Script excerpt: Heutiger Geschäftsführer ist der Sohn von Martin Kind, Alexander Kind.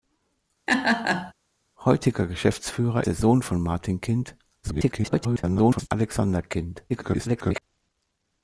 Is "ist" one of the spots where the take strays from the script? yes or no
yes